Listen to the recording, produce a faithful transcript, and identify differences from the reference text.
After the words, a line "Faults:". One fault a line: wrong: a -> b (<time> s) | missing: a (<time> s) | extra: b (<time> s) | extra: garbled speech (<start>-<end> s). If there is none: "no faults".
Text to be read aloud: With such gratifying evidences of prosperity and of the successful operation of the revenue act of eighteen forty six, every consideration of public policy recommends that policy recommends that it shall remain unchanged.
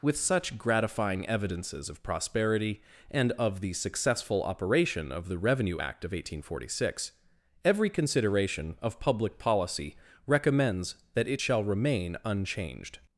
With such gratifying evidences of prosperity and of the successful operation of the revenue act of eighteen forty six, every consideration of public policy recommends that it shall remain unchanged.
Faults:
missing: policy recommends that (11.3 s)